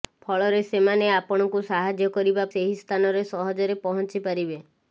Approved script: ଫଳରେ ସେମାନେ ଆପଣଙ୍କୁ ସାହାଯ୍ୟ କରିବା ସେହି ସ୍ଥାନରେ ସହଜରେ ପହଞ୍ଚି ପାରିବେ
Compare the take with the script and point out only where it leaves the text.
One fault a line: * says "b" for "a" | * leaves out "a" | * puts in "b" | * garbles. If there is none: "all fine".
all fine